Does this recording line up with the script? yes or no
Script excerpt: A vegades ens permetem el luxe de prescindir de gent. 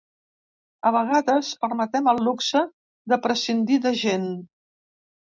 no